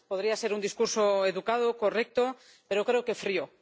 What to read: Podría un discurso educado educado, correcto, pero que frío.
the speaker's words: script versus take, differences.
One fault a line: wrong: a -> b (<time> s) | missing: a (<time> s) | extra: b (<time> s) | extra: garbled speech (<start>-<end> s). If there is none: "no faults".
extra: ser (0.3 s)
missing: educado (1.8 s)
extra: creo (2.8 s)